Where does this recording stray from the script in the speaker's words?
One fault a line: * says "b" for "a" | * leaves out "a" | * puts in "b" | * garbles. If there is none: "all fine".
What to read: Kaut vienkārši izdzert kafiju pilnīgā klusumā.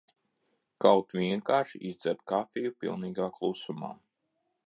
all fine